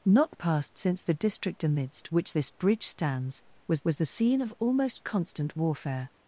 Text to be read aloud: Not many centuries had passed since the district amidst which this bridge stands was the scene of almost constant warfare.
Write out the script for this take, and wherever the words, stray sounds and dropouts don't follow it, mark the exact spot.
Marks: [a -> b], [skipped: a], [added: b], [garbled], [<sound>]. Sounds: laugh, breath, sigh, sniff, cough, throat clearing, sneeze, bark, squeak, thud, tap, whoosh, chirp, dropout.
Not [skipped: many centuries had] passed since the district amidst which this bridge stands was [added: was] the scene of almost constant warfare.